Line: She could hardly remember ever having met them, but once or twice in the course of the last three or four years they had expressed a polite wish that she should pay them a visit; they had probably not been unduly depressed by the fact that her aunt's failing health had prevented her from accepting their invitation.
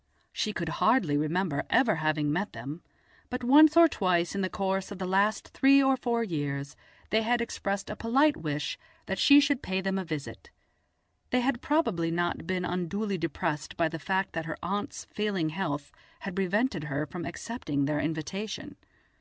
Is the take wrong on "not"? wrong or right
right